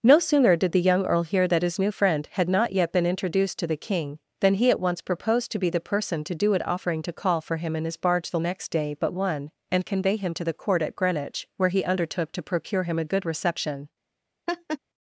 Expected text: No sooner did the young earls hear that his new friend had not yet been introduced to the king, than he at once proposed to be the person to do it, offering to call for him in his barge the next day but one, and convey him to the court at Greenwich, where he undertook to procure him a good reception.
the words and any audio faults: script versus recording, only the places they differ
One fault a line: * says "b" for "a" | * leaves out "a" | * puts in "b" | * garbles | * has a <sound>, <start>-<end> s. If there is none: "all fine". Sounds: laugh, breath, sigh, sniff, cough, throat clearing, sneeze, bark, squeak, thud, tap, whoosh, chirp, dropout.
* says "earl" for "earls"
* has a laugh, 14.5-14.8 s